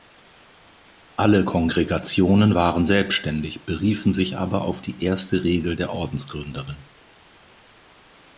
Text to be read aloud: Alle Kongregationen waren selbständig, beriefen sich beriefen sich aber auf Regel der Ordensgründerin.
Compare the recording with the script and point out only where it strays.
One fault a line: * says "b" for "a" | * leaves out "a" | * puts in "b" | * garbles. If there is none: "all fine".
* says "aber auf die erste" for "beriefen sich aber auf"